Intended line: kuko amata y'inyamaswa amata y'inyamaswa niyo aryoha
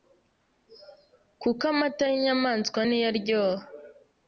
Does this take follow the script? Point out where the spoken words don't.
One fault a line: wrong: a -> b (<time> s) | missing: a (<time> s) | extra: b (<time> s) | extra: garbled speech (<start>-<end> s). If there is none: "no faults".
missing: amata y'inyamaswa (2.8 s)